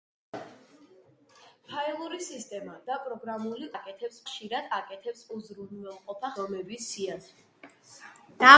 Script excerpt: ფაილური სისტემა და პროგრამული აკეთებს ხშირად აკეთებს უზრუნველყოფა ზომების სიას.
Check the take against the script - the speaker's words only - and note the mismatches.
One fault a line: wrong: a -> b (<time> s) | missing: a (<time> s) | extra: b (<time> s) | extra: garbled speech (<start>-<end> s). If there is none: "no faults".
no faults